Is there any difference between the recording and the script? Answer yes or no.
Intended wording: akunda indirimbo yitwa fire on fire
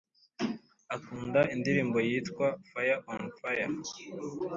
no